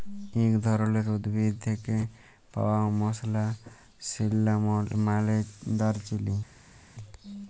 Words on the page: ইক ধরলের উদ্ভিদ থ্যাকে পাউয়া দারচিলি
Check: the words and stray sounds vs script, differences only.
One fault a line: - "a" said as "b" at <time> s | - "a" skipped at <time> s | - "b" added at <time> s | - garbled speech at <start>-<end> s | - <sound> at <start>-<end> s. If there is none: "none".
- "মসলা সিল্লামল মালে" added at 3.0 s